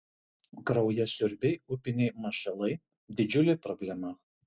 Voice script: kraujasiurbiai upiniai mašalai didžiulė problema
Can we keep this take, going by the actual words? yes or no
yes